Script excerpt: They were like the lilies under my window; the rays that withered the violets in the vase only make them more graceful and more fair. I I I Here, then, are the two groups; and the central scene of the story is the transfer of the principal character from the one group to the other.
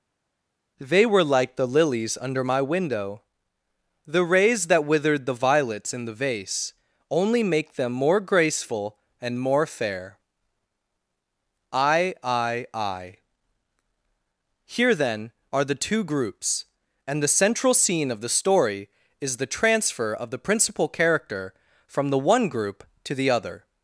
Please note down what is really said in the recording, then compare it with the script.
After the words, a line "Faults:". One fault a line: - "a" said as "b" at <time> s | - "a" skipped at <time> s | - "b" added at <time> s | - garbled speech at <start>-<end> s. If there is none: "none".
They were like the lilies under my window; the rays that withered the violets in the vase only make them more graceful and more fair. I I I Here, then, are the two groups; and the central scene of the story is the transfer of the principal character from the one group to the other.
Faults:
none